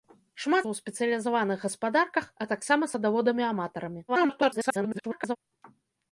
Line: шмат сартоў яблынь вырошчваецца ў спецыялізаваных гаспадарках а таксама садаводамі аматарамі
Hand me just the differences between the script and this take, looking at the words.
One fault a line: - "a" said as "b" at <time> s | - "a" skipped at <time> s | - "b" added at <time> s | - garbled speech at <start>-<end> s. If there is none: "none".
- "сартоў яблынь вырошчваецца" skipped at 0.7 s
- garbled speech at 4.1-5.4 s